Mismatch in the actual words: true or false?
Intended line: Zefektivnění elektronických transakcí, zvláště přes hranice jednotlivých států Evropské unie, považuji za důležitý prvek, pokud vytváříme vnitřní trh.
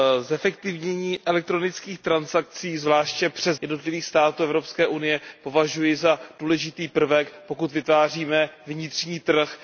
true